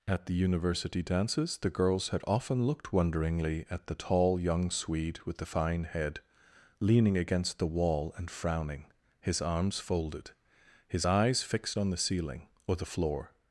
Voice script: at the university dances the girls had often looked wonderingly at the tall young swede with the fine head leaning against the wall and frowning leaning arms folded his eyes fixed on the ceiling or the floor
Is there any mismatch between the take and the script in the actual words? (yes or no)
yes